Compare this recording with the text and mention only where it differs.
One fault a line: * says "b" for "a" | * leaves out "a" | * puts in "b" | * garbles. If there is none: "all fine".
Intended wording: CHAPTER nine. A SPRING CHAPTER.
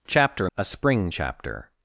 * leaves out "nine"